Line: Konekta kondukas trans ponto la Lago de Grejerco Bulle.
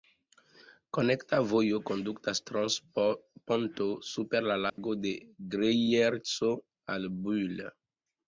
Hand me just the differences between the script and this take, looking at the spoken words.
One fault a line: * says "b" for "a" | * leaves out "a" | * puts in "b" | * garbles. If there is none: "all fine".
* puts in "vojo"
* puts in "super"
* puts in "al"